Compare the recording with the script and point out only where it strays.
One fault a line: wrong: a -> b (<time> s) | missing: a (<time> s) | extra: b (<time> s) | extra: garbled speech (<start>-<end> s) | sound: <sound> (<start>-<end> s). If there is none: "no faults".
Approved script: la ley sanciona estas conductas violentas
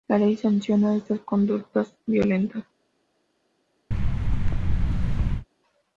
sound: thud (3.9-5.5 s)